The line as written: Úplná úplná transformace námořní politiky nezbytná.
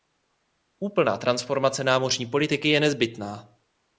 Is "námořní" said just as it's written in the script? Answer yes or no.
yes